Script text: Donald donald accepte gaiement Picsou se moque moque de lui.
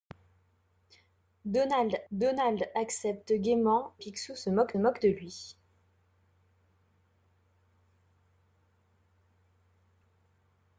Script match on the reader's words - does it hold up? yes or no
yes